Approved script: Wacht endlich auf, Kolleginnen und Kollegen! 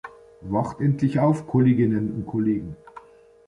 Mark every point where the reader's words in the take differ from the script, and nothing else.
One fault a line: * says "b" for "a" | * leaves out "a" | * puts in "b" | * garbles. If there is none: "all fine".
all fine